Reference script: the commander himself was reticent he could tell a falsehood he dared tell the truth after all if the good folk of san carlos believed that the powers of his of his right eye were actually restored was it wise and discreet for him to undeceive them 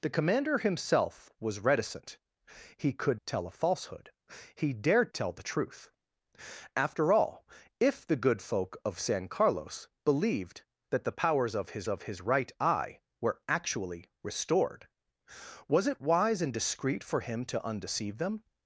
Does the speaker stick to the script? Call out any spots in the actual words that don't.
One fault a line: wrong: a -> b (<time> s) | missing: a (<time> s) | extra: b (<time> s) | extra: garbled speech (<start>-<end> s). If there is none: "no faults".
no faults